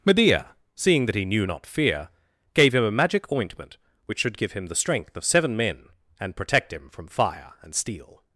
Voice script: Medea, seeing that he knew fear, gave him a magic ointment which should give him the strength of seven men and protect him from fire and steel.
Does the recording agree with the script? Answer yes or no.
no